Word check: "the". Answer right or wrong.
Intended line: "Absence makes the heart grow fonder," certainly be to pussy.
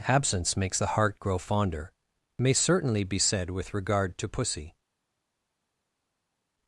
right